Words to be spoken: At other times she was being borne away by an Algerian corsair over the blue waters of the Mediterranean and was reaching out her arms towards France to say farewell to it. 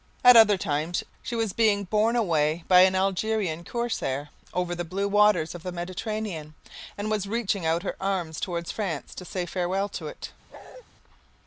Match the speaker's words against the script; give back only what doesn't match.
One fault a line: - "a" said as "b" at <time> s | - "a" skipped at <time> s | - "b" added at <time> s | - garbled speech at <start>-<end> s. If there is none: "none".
none